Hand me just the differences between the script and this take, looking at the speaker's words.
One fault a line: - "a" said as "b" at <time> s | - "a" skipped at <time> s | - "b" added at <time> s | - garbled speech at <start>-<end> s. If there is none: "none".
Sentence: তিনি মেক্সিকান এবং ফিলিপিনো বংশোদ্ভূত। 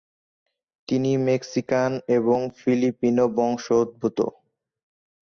none